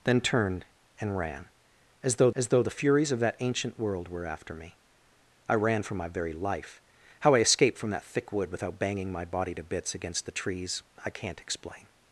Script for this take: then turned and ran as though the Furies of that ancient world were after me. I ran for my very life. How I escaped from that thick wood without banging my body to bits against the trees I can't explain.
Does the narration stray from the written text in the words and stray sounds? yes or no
yes